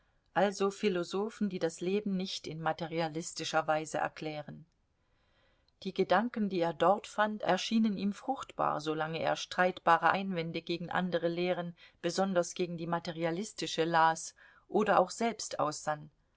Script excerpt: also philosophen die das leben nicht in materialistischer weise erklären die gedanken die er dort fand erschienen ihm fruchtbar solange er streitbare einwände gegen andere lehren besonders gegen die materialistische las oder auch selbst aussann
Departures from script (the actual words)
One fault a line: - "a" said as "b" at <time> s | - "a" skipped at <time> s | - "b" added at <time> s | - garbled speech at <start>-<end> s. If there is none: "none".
none